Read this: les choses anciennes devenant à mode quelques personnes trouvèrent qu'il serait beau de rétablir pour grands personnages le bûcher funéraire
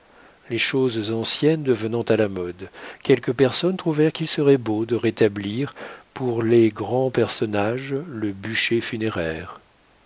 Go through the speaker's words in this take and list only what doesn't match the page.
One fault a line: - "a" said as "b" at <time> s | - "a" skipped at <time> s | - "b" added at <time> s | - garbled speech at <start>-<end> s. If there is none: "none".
- "la" added at 2.2 s
- "les" added at 6.4 s